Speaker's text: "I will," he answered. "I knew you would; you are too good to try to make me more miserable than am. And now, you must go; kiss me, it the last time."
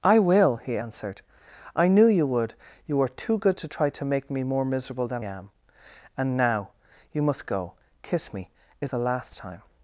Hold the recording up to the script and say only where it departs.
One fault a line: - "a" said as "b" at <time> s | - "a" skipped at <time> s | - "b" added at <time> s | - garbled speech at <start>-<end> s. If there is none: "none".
none